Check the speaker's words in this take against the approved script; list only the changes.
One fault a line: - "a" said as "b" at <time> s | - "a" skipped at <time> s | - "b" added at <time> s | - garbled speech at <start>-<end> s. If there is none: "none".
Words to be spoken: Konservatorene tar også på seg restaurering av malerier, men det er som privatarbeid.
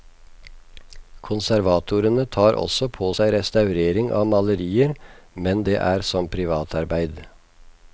none